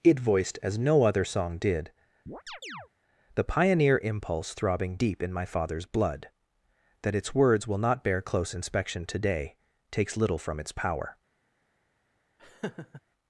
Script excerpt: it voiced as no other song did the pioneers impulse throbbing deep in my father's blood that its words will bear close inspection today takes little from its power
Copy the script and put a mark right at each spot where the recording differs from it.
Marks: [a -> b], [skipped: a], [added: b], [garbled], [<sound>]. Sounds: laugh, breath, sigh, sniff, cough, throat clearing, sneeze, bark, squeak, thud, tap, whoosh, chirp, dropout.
it voiced as no other song did [chirp] the [pioneers -> pioneer] impulse throbbing deep in my father's blood that its words will [added: not] bear close inspection today takes little from its power [laugh]